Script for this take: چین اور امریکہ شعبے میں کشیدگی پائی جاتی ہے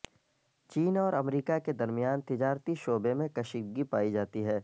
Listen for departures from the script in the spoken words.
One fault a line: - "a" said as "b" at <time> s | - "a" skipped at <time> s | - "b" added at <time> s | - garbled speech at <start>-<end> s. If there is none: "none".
- "کے درمیان تجارتی" added at 1.6 s